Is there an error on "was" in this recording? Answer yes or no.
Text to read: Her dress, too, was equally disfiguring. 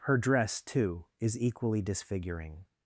yes